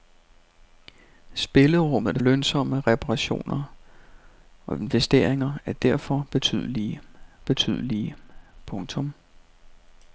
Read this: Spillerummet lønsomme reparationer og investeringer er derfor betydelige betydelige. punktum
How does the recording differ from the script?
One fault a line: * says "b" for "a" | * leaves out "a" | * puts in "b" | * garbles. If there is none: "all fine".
all fine